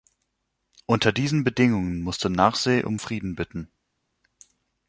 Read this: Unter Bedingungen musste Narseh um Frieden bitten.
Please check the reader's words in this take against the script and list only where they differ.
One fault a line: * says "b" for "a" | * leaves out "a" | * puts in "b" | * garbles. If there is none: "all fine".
* puts in "diesen"